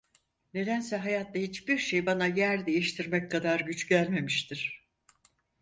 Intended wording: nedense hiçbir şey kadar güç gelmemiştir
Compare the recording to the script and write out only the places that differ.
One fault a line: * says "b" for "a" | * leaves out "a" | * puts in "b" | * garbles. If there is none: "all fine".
* puts in "hayatta"
* puts in "bana yer değiştirmek"